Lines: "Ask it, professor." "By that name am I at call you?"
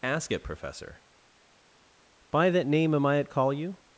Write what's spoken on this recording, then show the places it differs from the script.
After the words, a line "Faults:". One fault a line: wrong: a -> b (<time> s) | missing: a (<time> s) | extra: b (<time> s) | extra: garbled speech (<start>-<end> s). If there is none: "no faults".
"Ask it, professor." "By that name am I at call you?"
Faults:
no faults